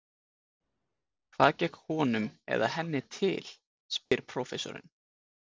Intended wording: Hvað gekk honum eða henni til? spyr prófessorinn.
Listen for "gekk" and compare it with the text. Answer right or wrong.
right